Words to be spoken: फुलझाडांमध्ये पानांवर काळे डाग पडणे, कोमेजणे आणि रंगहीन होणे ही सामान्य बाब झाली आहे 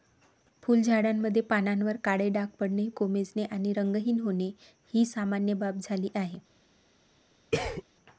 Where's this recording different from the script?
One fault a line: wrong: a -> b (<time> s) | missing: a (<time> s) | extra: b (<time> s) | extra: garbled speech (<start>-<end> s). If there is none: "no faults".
no faults